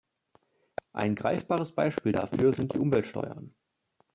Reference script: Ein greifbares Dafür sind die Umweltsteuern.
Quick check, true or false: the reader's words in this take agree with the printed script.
false